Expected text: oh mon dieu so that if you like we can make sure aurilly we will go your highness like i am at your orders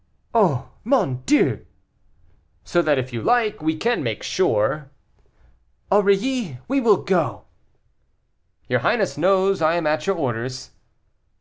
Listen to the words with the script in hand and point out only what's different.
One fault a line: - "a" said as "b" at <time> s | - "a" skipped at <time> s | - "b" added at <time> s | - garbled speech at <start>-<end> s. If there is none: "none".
- "like" said as "knows" at 9.2 s